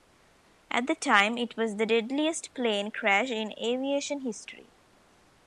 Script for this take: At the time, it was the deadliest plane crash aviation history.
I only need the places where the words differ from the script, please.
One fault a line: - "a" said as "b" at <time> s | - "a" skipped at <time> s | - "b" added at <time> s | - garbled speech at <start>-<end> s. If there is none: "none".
- "in" added at 3.3 s